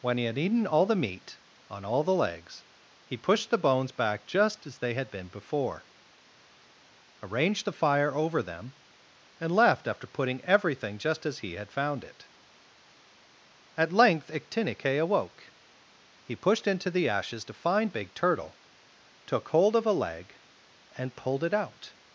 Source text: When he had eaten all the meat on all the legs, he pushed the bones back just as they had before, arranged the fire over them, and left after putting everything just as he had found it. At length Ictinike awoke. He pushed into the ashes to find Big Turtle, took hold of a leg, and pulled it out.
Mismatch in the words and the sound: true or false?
true